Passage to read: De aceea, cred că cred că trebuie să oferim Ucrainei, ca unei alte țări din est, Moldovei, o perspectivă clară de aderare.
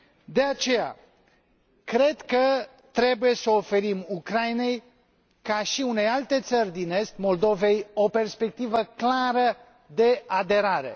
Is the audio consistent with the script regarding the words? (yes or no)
no